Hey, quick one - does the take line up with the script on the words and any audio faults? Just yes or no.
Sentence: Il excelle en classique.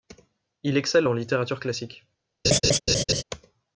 no